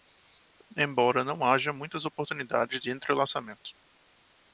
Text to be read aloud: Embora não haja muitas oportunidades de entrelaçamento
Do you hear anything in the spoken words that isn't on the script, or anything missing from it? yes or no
no